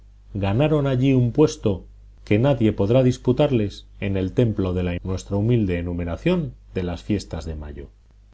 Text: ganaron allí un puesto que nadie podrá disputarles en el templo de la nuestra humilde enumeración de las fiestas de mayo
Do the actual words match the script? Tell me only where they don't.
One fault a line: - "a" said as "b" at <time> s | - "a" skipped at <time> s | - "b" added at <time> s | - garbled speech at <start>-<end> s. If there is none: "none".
none